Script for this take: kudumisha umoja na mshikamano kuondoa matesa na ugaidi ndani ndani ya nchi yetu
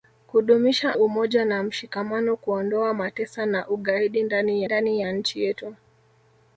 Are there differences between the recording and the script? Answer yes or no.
no